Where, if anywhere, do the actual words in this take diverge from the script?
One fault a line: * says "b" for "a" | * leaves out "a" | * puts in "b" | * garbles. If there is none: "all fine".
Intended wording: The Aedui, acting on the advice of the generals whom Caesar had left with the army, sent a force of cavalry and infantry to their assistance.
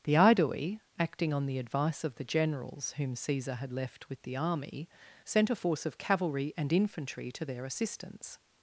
all fine